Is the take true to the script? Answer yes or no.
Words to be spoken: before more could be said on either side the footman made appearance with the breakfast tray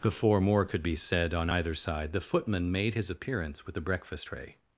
no